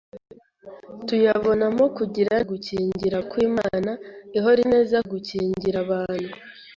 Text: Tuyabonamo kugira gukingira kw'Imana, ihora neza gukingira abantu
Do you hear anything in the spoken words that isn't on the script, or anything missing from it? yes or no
no